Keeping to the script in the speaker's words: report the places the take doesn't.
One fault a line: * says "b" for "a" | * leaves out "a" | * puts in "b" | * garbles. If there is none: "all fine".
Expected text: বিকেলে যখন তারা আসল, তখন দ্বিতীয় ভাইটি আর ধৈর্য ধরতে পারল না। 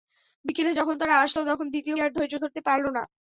* leaves out "ভাইটি"